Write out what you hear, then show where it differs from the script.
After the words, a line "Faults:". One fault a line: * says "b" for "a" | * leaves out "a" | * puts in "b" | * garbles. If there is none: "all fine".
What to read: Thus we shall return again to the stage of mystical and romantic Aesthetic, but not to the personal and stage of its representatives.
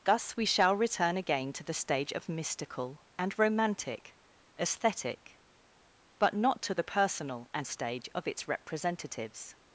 Thus we shall return again to the stage of mystical and romantic Aesthetic, but not to the personal and stage of its representatives.
Faults:
all fine